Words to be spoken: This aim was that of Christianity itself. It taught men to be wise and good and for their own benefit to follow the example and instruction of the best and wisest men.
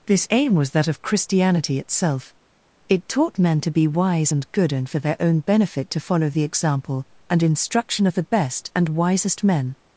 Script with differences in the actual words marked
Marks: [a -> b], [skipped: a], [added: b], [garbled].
This aim was that of Christianity itself. It taught men to be wise and good and for their own benefit to follow the example and instruction of the best and wisest men.